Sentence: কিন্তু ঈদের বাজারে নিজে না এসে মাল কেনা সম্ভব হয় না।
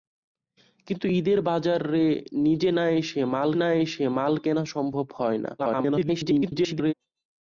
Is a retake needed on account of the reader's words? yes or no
yes